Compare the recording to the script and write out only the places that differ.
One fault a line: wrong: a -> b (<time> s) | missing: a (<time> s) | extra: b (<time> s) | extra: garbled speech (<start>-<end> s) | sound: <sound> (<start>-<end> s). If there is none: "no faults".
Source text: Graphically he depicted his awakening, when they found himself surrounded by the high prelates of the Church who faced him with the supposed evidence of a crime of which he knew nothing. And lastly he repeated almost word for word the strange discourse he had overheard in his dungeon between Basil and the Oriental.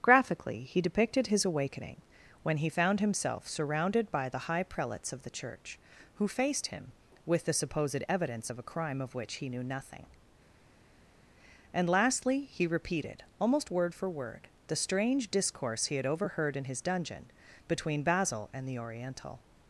wrong: they -> he (2.6 s)